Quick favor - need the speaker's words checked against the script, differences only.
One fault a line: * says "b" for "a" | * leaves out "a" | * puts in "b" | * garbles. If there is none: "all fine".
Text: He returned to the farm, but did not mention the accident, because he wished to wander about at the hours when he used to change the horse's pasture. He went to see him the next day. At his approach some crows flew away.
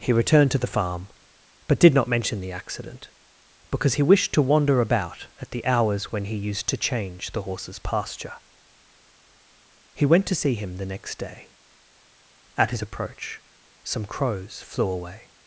all fine